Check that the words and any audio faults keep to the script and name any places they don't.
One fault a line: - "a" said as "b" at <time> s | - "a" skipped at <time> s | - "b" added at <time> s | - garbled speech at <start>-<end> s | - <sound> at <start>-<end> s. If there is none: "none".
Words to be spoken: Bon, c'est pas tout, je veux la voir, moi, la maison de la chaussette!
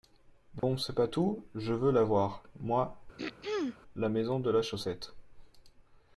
- dropout at 0.6-0.6 s
- throat clearing at 3.2-3.8 s